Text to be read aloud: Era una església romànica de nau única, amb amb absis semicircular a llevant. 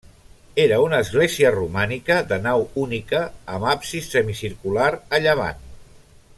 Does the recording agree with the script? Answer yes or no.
no